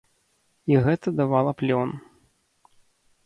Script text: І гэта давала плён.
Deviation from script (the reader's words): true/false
false